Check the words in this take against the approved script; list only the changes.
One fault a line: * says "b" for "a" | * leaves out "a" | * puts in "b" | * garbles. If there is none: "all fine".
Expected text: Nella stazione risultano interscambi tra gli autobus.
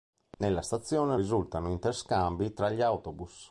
all fine